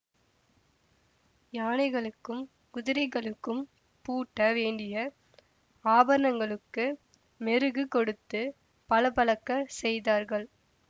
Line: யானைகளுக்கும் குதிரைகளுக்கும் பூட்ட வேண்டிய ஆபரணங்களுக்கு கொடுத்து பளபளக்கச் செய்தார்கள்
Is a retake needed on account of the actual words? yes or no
yes